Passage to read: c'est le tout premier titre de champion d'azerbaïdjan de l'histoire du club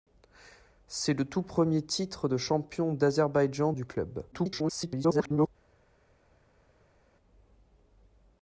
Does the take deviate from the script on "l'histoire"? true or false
true